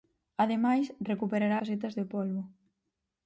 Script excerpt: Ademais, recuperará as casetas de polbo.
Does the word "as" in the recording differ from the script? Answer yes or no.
yes